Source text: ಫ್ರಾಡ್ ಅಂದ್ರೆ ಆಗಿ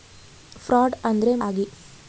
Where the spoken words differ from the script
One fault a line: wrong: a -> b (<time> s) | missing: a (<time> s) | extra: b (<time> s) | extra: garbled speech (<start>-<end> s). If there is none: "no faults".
no faults